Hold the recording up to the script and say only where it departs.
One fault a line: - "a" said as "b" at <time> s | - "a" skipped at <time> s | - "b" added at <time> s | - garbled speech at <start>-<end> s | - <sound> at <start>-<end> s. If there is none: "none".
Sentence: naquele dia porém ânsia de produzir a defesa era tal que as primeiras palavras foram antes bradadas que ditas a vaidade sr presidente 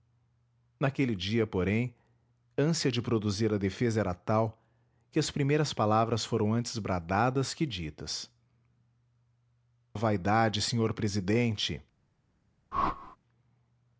- whoosh at 12.7-13.2 s